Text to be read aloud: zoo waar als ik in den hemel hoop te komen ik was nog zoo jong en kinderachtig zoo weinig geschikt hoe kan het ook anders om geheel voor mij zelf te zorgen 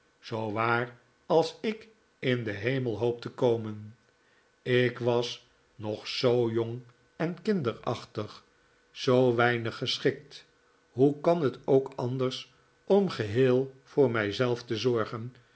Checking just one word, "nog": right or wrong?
right